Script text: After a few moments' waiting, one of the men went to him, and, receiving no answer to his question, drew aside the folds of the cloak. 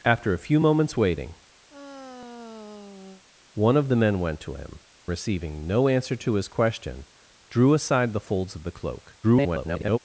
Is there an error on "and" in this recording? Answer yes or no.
yes